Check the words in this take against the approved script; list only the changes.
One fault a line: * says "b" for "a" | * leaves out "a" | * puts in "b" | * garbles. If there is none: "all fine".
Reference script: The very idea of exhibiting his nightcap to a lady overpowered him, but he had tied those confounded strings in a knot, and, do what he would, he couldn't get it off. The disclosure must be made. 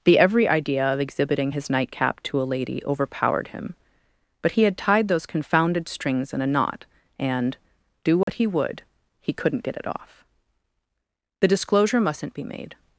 * says "every" for "very"
* says "mustn't" for "must"